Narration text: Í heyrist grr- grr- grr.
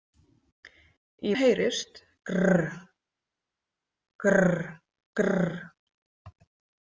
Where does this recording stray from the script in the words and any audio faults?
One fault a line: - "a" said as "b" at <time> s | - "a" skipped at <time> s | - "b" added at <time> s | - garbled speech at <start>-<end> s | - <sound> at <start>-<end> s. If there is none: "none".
none